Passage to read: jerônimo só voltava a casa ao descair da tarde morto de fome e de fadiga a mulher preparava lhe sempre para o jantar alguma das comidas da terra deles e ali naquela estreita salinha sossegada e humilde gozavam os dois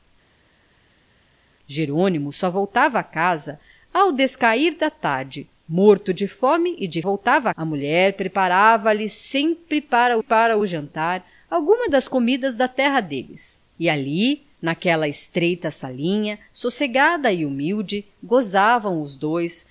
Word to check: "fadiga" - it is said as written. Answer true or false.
false